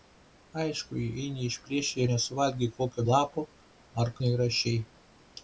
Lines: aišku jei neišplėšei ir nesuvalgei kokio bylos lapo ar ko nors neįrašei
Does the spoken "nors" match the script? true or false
false